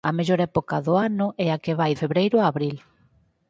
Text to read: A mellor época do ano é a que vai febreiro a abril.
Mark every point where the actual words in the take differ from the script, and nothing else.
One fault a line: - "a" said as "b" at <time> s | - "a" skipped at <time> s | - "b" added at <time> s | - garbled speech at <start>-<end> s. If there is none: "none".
none